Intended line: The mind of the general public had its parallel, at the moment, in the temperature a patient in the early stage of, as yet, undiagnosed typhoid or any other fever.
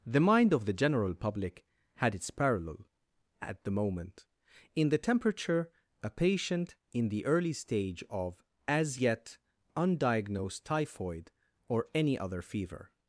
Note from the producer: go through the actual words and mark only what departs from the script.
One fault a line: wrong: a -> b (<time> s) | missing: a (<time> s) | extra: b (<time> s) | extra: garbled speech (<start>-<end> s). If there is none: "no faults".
no faults